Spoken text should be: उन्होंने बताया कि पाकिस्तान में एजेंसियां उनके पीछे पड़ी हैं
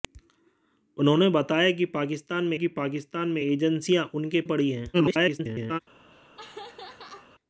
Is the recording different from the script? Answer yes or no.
yes